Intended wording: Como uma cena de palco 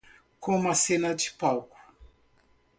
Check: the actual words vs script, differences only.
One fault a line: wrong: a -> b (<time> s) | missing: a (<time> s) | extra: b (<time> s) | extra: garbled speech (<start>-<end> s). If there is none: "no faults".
no faults